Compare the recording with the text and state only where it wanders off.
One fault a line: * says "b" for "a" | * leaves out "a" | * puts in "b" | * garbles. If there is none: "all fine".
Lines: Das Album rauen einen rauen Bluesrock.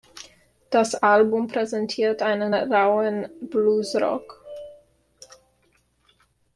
* says "präsentiert" for "rauen"